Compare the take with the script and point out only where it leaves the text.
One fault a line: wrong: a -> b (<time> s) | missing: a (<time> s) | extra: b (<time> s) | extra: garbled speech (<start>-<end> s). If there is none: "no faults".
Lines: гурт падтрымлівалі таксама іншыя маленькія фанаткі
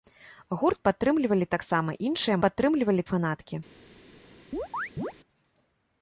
wrong: маленькія -> падтрымлівалі (2.4 s)